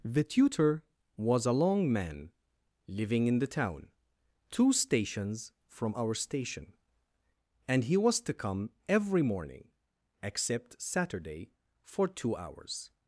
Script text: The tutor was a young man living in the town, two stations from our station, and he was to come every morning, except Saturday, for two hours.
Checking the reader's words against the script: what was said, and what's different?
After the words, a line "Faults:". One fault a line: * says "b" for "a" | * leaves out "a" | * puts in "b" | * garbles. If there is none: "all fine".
The tutor was a long man living in the town, two stations from our station, and he was to come every morning, except Saturday, for two hours.
Faults:
* says "long" for "young"